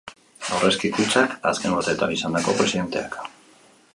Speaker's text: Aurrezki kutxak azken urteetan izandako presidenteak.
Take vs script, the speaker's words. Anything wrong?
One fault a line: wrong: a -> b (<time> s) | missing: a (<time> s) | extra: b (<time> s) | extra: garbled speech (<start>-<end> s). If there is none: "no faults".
no faults